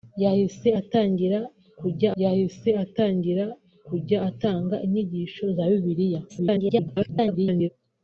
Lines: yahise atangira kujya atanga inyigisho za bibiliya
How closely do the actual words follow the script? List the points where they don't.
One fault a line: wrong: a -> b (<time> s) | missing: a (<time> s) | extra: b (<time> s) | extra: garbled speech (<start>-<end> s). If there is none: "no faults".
extra: yahise atangira kujya (2.2 s)
extra: garbled speech (6.3-7.7 s)